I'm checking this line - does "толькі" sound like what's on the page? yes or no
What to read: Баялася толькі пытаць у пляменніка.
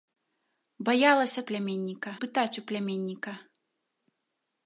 no